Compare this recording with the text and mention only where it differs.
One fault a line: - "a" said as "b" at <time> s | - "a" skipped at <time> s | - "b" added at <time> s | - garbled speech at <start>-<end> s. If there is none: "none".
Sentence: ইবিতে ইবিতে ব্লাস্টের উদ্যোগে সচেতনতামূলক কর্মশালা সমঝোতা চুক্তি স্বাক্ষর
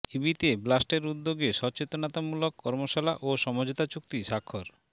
- "ইবিতে" skipped at 0.5 s
- "ও" added at 3.2 s